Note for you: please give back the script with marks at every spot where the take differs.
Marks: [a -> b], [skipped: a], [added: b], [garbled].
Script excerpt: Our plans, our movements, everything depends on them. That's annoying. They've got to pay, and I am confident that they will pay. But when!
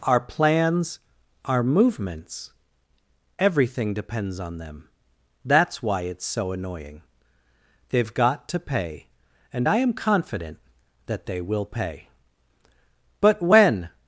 Our plans, our movements, everything depends on them. That's [added: why it's so] annoying. They've got to pay, and I am confident that they will pay. But when!